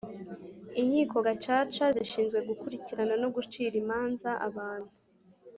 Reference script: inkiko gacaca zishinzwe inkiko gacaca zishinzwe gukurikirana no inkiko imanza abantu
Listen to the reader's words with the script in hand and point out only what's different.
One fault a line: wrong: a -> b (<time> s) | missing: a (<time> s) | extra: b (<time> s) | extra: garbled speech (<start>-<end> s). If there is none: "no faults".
missing: inkiko gacaca zishinzwe (2.4 s)
wrong: inkiko -> gucira (3.4 s)